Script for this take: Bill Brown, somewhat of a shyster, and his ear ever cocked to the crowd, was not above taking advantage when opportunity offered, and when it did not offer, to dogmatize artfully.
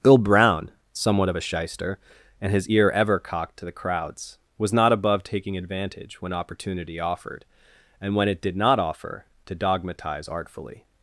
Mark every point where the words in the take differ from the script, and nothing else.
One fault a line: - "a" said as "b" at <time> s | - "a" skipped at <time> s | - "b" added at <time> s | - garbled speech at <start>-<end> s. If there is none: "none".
- "crowd" said as "crowds" at 3.7 s